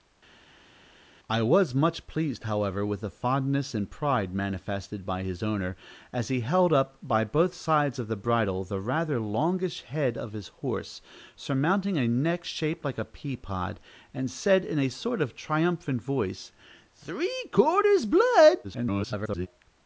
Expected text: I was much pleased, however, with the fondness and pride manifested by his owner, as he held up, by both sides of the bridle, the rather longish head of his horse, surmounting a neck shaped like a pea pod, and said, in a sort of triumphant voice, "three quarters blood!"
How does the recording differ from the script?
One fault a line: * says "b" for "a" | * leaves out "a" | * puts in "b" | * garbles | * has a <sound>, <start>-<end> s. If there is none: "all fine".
* garbles